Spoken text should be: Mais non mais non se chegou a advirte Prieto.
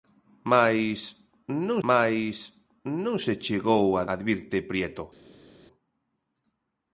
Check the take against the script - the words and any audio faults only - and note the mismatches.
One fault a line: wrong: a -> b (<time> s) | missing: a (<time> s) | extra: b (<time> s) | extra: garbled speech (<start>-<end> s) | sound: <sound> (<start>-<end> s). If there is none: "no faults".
no faults